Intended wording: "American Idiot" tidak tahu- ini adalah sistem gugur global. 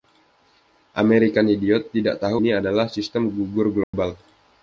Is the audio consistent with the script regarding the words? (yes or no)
yes